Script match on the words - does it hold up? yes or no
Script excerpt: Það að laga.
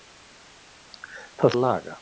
yes